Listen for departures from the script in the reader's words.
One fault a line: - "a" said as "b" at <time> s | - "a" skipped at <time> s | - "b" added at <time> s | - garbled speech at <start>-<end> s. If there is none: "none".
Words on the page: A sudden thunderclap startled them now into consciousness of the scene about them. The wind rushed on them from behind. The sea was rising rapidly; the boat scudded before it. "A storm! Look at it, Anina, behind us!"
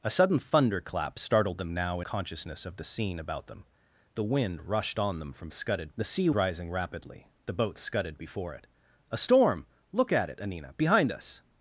- "into" skipped at 2.0 s
- "behind" said as "scudded" at 5.5 s
- "was" skipped at 6.3 s